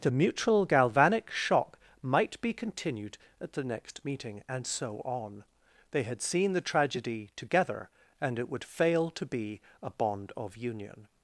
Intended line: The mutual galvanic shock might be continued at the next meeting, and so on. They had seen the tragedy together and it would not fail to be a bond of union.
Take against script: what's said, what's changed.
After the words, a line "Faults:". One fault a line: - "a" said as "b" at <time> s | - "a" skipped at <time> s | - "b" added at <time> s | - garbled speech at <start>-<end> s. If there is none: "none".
The mutual galvanic shock might be continued at the next meeting, and so on. They had seen the tragedy together and it would fail to be a bond of union.
Faults:
- "not" skipped at 8.6 s